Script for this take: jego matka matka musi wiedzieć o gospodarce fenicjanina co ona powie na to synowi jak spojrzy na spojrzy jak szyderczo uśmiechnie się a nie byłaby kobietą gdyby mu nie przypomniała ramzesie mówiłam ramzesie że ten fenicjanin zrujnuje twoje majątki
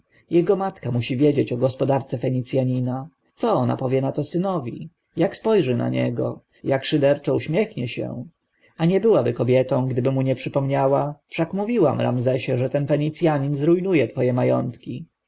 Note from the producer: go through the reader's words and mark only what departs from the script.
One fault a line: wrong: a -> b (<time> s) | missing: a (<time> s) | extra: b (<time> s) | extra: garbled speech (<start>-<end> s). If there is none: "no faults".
missing: matka (0.9 s)
wrong: spojrzy -> niego (5.9 s)
wrong: ramzesie -> wszak (11.3 s)